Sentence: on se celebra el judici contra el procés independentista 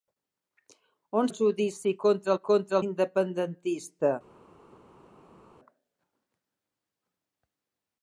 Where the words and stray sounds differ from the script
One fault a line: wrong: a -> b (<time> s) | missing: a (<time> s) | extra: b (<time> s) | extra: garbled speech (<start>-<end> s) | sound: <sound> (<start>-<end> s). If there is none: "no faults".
missing: se celebra (1.3 s)
wrong: procés -> contra (2.5 s)